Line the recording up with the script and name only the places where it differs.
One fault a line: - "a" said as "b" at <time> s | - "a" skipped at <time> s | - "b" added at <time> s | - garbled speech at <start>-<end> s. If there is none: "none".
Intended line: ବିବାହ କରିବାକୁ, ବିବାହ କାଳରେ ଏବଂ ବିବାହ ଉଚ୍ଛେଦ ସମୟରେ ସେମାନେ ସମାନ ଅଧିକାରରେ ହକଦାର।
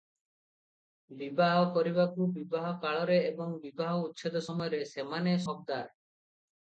- "ସମାନ ଅଧିକାରରେ" skipped at 5.4 s